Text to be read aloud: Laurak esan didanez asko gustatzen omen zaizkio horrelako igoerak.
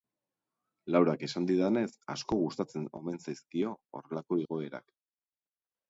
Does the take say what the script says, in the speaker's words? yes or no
yes